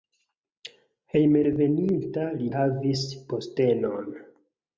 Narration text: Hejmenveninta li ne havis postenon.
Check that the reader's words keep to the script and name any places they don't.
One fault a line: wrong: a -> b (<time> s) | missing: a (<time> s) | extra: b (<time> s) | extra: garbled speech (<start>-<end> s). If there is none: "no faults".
missing: ne (2.5 s)